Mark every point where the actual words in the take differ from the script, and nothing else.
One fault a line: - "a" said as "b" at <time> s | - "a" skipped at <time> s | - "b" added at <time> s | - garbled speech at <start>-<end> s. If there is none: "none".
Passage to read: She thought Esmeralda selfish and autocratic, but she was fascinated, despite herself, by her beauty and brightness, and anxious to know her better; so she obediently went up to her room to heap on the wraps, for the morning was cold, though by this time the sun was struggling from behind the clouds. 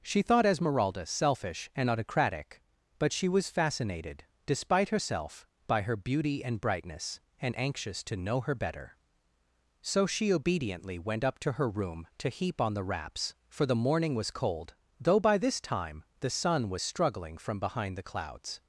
none